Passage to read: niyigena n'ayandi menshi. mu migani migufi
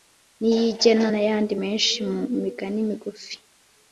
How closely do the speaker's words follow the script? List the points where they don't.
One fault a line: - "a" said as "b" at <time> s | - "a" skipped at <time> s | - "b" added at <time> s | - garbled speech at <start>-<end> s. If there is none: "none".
none